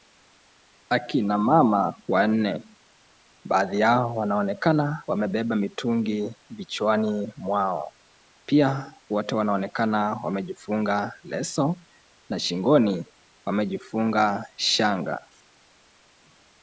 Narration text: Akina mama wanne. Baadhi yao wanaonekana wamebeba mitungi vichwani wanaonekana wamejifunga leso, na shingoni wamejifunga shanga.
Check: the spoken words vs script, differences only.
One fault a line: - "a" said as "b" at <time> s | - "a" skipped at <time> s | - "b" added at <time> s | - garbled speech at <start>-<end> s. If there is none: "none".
- "mwao Pia wote" added at 7.4 s